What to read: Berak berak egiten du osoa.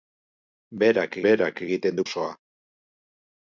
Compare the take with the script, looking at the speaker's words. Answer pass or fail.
pass